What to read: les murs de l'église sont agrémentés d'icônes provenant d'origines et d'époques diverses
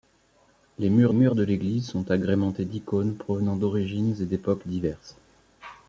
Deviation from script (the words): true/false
true